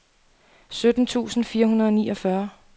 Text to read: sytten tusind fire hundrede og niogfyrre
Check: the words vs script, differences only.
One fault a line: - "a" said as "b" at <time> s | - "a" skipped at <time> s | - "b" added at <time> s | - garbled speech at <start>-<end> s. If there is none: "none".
none